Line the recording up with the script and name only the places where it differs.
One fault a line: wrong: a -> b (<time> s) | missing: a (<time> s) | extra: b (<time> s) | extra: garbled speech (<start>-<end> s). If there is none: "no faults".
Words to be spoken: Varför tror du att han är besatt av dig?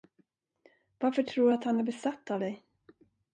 no faults